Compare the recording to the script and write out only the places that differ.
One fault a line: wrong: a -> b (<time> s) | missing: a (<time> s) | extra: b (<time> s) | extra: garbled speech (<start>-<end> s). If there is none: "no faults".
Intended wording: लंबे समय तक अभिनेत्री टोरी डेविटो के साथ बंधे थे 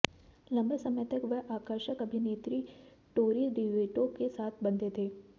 extra: वह आकर्षक (1.2 s)